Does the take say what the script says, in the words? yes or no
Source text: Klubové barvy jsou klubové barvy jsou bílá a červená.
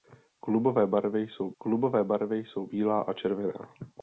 yes